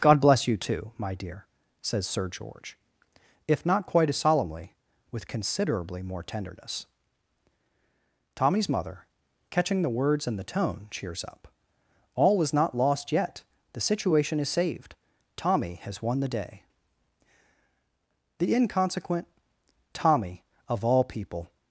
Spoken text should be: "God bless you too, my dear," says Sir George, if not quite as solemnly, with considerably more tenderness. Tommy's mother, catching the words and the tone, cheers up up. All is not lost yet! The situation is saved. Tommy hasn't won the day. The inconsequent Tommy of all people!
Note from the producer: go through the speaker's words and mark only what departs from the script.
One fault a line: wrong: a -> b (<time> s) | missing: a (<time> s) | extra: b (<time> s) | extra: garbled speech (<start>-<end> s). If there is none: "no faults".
missing: up (11.5 s)
wrong: hasn't -> has (15.8 s)